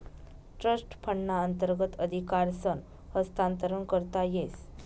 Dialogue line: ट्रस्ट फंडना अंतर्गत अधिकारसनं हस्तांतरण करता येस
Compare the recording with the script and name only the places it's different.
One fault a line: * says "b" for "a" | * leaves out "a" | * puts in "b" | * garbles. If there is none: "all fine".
all fine